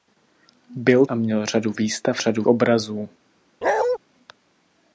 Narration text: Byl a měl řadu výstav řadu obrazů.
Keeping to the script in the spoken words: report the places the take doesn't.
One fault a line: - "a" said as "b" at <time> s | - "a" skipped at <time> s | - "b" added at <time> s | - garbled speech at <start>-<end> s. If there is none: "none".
none